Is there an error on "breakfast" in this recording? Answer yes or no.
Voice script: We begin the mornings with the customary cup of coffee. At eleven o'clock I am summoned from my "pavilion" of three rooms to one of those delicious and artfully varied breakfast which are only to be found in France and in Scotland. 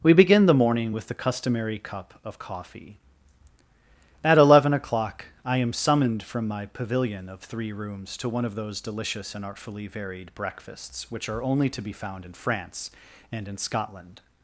yes